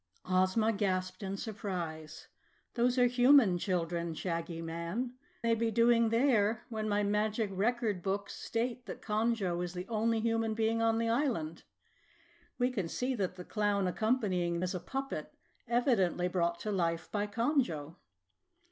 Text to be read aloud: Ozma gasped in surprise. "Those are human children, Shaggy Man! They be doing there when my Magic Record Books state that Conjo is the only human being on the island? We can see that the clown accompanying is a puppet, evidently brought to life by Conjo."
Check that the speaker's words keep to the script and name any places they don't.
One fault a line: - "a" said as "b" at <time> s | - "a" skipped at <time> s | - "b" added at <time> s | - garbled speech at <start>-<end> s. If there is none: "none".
none